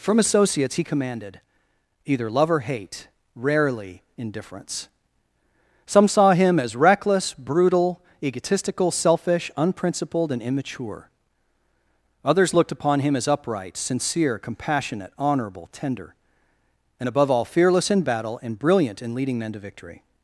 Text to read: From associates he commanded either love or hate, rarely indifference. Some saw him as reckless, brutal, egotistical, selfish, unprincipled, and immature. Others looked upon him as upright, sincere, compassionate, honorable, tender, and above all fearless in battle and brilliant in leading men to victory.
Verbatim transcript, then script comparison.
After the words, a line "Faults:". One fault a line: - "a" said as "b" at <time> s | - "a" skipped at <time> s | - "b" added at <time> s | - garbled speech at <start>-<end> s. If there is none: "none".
From associates he commanded either love or hate, rarely indifference. Some saw him as reckless, brutal, egotistical, selfish, unprincipled, and immature. Others looked upon him as upright, sincere, compassionate, honorable, tender, and above all fearless in battle and brilliant in leading men to victory.
Faults:
none